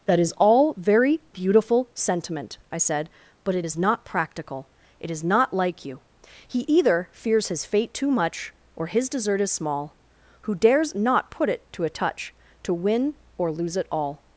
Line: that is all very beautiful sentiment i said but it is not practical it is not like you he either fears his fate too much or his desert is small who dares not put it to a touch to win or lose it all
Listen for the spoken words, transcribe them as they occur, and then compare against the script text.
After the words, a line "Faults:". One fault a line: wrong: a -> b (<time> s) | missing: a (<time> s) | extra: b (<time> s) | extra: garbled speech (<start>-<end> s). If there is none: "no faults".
that is all very beautiful sentiment i said but it is not practical it is not like you he either fears his fate too much or his desert is small who dares not put it to a touch to win or lose it all
Faults:
no faults